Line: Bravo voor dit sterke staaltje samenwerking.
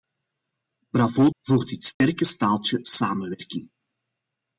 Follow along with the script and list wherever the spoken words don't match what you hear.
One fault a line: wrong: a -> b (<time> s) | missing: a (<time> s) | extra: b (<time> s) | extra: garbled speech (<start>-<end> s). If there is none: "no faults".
no faults